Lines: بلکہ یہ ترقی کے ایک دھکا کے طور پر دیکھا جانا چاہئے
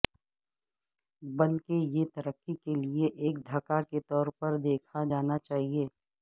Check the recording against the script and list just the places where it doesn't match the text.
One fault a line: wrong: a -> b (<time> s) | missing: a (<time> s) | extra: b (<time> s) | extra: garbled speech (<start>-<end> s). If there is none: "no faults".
extra: لئے (2.8 s)